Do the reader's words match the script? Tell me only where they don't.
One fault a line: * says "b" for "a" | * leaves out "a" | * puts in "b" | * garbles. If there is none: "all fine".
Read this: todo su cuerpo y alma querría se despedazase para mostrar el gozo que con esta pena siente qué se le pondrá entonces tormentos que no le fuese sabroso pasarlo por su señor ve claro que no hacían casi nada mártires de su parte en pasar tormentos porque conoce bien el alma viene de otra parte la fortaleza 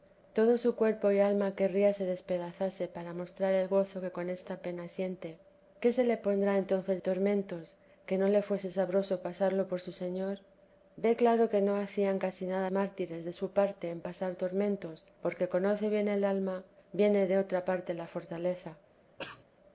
all fine